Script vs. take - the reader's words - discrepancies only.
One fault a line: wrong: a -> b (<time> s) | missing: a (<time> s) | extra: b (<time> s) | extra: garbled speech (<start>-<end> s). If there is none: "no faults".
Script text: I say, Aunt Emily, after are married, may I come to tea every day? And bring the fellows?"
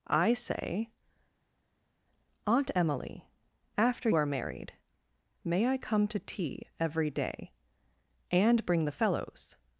no faults